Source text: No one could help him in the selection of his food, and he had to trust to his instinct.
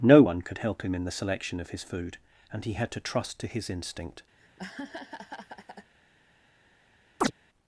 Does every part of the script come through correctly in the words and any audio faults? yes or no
no